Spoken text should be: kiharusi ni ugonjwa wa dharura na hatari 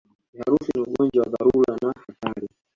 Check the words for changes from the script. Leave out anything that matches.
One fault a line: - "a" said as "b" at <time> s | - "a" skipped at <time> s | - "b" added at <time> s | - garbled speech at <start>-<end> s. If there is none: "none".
none